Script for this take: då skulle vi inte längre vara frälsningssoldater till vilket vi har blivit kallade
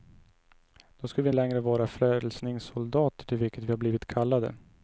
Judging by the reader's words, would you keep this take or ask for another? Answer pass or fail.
fail